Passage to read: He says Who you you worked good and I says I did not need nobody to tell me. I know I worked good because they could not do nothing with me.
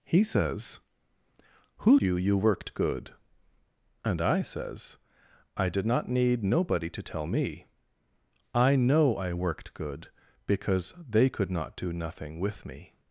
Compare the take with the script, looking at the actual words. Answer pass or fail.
pass